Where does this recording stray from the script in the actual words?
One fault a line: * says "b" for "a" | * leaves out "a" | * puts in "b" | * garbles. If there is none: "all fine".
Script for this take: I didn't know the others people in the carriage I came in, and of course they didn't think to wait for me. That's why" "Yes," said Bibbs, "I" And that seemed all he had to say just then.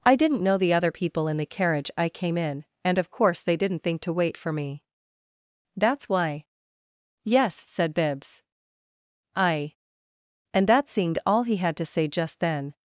* says "other" for "others"